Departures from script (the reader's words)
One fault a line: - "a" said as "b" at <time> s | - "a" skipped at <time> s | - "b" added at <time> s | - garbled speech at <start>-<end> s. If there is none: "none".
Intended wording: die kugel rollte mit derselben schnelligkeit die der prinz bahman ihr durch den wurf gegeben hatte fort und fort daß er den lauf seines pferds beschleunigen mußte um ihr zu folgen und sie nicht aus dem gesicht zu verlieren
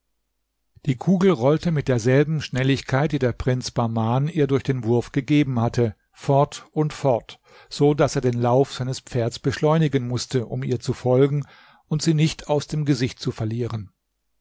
- "so" added at 7.7 s